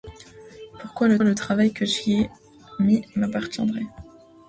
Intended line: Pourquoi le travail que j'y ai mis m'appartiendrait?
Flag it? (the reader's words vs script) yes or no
yes